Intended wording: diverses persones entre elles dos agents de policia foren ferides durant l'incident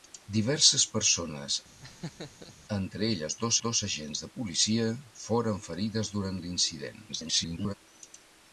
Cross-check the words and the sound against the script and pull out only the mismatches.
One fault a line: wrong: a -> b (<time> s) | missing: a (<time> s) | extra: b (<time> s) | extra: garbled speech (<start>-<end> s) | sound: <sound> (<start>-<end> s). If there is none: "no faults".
sound: laugh (1.8-2.5 s)
extra: dos (3.6 s)
extra: garbled speech (7.1-7.7 s)